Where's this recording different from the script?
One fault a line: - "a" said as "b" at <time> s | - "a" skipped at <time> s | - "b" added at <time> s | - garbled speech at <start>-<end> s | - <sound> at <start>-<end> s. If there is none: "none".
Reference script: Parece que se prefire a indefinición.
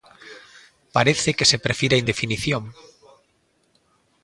none